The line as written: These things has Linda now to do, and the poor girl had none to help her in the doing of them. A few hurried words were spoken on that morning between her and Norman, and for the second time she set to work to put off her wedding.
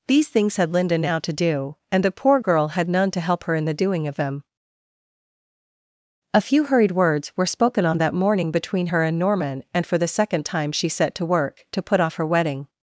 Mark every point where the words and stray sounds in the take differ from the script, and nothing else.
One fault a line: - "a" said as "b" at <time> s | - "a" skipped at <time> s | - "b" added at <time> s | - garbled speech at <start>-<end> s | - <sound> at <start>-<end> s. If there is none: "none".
- "has" said as "had" at 0.6 s